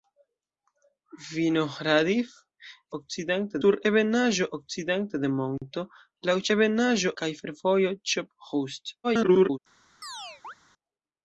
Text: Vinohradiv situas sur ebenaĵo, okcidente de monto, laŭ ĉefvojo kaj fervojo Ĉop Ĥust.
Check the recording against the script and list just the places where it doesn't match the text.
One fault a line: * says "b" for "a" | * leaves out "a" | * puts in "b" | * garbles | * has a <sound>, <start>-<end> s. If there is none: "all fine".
* says "okcidente" for "situas"
* says "ebenaĵo" for "ĉefvojo"
* garbles
* has a chirp, 10.0-10.5 s